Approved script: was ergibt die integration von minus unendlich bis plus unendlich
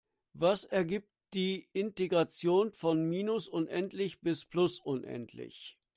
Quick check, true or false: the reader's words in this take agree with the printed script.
true